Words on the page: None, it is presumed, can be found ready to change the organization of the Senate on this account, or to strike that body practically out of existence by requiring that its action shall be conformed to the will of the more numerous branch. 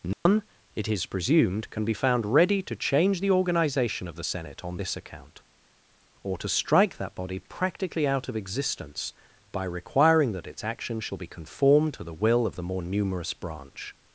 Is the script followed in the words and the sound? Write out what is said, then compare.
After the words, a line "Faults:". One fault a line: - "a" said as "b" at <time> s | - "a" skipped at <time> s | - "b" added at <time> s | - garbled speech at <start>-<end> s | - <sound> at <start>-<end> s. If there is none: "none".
None, it is presumed, can be found ready to change the organization of the Senate on this account, or to strike that body practically out of existence by requiring that its action shall be conformed to the will of the more numerous branch.
Faults:
- dropout at 0.1-0.3 s